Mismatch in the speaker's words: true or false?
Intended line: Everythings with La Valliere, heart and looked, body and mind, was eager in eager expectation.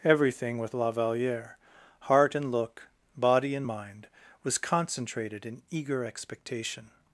true